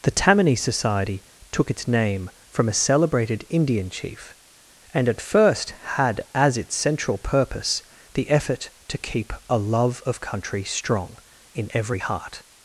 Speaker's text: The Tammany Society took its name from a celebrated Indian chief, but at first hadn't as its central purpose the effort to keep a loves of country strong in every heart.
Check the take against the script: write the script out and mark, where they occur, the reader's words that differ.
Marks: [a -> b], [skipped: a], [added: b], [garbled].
The Tammany Society took its name from a celebrated Indian chief, [but -> and] at first [hadn't -> had] as its central purpose the effort to keep a [loves -> love] of country strong in every heart.